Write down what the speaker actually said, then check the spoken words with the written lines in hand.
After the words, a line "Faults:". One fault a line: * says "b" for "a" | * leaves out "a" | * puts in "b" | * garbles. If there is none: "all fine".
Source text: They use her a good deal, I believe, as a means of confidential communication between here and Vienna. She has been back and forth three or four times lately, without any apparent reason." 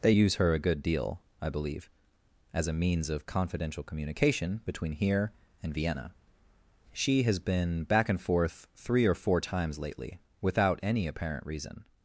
They use her a good deal, I believe, as a means of confidential communication between here and Vienna. She has been back and forth three or four times lately, without any apparent reason."
Faults:
all fine